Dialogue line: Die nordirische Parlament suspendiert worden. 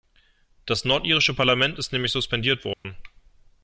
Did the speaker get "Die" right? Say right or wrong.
wrong